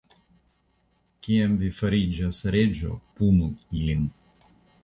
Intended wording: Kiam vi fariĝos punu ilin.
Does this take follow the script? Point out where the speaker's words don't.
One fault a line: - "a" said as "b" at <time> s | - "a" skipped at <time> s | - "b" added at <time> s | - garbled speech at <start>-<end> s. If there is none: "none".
- "reĝo" added at 2.6 s